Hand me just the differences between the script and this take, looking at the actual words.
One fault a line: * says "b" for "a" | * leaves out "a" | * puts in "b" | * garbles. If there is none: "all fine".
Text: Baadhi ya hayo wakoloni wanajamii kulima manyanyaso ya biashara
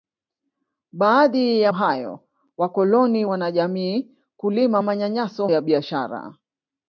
all fine